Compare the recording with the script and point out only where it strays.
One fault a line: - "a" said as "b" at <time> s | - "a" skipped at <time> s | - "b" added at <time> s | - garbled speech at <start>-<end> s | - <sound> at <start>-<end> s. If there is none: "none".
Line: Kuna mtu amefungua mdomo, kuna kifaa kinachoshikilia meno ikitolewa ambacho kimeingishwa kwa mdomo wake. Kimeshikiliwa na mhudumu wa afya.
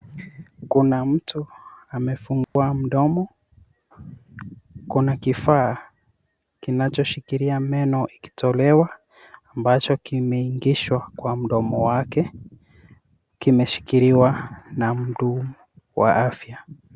- dropout at 2.4-2.6 s